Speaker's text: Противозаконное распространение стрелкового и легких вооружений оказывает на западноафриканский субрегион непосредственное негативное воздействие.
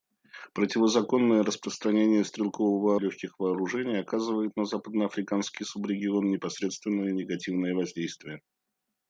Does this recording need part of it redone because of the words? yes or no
no